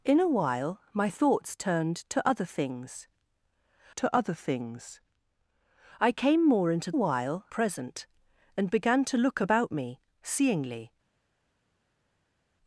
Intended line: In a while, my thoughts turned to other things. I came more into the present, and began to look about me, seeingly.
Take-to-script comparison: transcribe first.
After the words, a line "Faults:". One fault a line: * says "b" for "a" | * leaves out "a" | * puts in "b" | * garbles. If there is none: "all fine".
In a while, my thoughts turned to other things to other things. I came more into while present, and began to look about me, seeingly.
Faults:
* puts in "to other things"
* says "while" for "the"